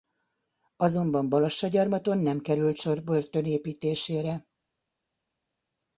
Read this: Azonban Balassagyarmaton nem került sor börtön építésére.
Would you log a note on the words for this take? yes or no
no